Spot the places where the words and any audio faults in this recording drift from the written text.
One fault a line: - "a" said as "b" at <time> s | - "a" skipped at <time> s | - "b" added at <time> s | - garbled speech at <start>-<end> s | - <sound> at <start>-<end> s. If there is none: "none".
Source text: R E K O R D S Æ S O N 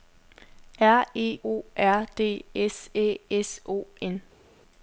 - "K" skipped at 1.4 s